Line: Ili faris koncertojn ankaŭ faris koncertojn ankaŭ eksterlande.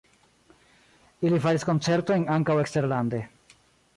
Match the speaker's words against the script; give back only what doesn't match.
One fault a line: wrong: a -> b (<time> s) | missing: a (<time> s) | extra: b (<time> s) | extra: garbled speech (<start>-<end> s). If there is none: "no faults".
missing: faris koncertojn ankaŭ (2.6 s)